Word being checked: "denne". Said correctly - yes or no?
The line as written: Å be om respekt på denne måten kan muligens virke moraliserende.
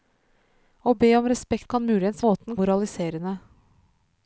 no